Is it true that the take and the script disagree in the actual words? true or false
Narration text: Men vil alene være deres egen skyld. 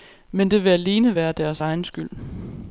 true